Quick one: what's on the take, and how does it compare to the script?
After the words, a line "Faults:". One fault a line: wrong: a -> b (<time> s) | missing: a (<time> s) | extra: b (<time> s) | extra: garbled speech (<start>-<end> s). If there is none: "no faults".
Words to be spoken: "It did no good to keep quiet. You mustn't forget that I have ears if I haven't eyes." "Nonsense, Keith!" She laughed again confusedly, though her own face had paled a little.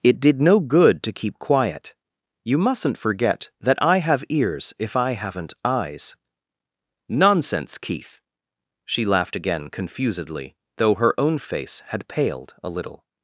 "It did no good to keep quiet. You mustn't forget that I have ears if I haven't eyes." "Nonsense, Keith!" She laughed again confusedly, though her own face had paled a little.
Faults:
no faults